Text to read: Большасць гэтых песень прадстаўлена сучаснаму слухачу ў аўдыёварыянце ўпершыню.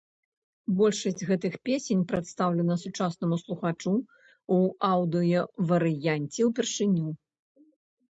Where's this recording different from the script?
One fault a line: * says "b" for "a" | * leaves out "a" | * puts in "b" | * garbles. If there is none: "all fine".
all fine